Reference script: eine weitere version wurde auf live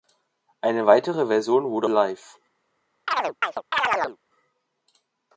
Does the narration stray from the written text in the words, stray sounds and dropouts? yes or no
yes